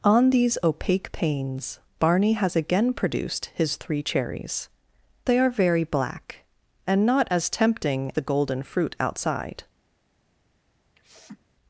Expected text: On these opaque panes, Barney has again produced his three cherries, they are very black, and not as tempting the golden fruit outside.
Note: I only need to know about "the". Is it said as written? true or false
true